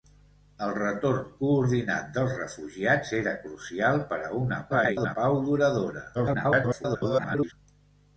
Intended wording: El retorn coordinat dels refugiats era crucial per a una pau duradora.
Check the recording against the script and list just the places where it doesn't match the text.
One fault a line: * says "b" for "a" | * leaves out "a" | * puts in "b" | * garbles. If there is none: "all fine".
* garbles
* garbles